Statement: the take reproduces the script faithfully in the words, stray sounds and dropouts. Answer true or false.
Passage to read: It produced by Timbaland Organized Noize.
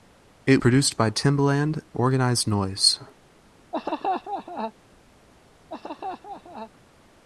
false